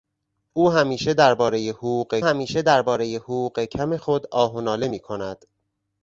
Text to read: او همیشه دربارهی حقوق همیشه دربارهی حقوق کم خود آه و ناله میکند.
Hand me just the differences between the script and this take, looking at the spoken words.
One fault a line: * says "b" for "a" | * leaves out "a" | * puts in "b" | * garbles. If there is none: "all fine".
all fine